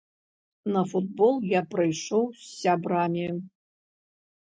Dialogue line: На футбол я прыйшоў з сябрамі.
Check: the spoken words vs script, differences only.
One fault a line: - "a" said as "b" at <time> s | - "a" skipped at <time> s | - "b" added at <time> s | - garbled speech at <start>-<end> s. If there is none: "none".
none